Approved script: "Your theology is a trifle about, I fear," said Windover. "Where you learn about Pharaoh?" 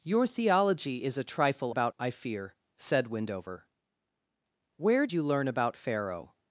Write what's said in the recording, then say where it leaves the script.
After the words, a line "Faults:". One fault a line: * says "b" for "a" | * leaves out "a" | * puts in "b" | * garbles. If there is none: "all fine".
"Your theology is a trifle about, I fear," said Windover. "Where you learn about Pharaoh?"
Faults:
all fine